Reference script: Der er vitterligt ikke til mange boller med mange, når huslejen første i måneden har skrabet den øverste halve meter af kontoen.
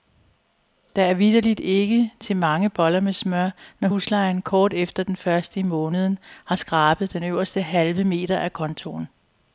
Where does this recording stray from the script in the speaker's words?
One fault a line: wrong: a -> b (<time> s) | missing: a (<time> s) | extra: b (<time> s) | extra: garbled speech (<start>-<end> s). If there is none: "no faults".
wrong: mange -> smør (3.1 s)
extra: kort efter den (4.4 s)